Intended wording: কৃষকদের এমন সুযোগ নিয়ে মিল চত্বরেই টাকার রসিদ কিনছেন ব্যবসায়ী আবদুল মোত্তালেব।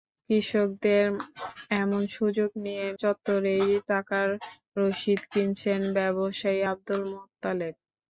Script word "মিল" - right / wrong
wrong